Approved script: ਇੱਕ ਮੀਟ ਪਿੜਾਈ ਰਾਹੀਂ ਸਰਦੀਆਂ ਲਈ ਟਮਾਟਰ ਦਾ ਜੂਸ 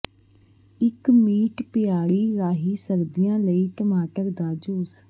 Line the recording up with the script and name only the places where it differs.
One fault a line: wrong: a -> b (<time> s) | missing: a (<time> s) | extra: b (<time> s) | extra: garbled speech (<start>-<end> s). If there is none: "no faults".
no faults